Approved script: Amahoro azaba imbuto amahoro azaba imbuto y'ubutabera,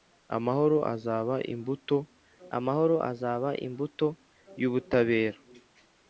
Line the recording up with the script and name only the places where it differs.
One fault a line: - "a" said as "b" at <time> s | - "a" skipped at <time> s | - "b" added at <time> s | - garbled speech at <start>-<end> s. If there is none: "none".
none